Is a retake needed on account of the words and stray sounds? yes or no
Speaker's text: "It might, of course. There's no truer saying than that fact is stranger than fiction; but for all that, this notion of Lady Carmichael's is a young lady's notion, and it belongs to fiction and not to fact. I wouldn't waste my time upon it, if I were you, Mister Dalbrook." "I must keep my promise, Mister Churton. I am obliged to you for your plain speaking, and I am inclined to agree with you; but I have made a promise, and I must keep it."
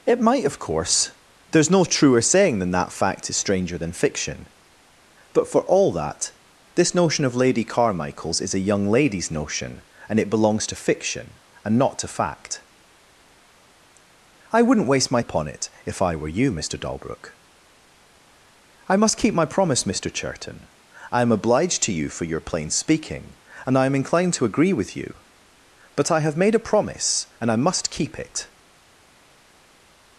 yes